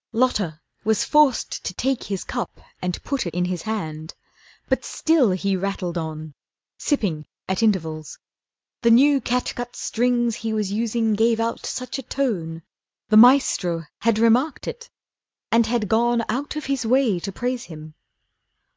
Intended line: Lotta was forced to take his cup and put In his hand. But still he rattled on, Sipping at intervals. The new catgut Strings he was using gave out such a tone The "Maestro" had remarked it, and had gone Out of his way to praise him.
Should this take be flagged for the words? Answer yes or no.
no